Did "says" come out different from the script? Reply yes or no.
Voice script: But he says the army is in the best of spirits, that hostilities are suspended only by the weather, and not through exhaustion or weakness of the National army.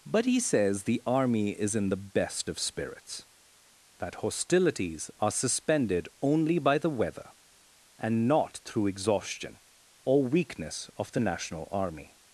no